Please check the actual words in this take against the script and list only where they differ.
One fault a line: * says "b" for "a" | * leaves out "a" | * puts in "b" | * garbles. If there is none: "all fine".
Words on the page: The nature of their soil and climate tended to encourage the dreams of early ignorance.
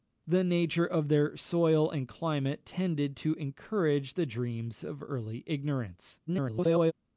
* garbles